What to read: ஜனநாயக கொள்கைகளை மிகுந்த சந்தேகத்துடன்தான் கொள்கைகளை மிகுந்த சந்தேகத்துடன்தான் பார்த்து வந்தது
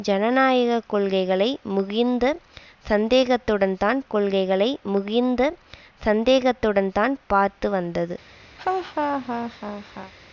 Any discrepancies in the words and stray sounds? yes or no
yes